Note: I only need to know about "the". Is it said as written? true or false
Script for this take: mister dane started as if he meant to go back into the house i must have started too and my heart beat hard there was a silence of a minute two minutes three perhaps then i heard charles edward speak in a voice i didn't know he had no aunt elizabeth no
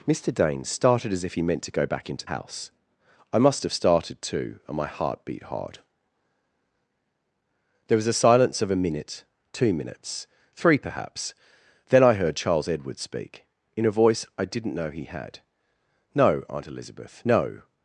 false